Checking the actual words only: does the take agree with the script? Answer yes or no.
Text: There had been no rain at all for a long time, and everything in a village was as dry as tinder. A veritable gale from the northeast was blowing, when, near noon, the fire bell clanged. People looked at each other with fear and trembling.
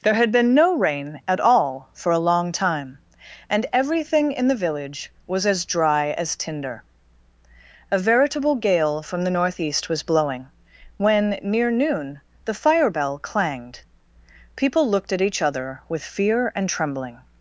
no